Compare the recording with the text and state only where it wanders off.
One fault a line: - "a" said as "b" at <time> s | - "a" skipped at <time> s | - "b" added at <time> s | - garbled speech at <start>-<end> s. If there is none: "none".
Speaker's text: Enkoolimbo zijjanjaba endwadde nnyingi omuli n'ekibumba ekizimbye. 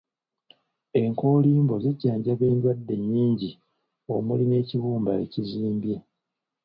none